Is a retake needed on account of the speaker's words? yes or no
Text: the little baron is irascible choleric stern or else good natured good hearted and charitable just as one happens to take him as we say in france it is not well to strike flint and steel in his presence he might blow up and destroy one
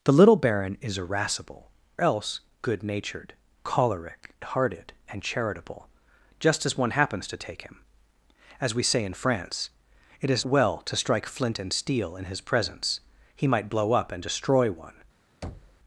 yes